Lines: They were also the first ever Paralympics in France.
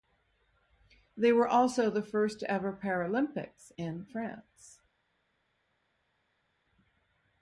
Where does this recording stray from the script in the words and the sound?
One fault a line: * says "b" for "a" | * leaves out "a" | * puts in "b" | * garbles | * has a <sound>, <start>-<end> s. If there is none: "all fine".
all fine